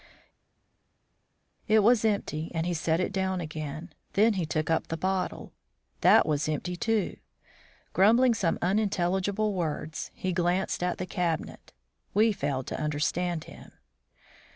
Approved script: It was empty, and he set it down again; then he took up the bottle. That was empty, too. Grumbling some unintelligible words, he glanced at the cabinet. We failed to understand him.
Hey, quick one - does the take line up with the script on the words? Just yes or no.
yes